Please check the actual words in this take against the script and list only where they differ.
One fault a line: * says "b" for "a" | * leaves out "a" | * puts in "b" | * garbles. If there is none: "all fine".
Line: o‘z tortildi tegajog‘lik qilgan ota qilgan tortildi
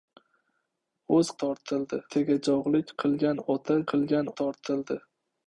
all fine